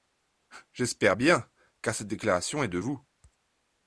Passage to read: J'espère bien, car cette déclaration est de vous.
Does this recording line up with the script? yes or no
yes